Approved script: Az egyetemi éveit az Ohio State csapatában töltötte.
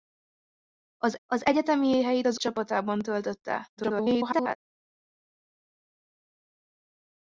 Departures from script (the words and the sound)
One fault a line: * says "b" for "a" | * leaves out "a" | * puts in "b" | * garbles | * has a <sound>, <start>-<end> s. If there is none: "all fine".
* puts in "az"
* leaves out "Ohio State"
* garbles